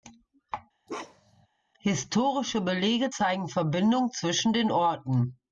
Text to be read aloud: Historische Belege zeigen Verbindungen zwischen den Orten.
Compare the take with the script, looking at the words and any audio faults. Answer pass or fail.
fail